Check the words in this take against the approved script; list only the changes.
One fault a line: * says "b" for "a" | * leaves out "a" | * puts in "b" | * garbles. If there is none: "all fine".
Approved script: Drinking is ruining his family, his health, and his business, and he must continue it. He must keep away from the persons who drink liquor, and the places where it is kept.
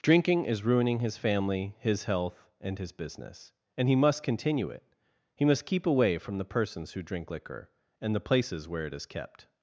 all fine